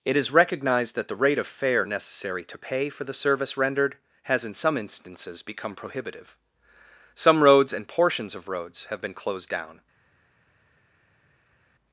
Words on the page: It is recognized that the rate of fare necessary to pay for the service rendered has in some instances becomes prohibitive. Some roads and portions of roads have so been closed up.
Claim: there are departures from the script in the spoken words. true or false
true